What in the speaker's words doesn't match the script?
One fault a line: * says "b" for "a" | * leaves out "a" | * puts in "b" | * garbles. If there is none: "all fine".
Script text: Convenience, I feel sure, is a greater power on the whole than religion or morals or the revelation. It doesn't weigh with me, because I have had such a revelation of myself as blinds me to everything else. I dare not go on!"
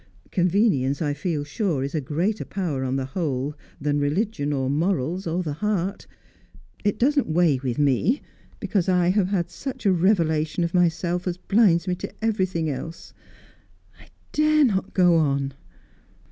* says "heart" for "revelation"